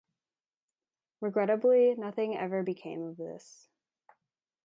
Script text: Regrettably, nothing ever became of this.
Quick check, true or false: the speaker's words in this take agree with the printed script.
true